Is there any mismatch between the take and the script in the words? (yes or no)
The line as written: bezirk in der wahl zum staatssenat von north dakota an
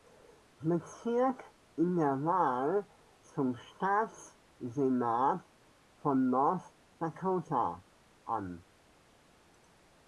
no